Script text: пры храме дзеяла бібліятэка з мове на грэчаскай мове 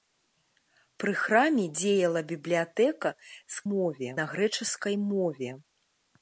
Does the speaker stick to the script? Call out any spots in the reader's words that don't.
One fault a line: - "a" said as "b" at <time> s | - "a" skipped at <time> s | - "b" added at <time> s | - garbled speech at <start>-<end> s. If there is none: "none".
none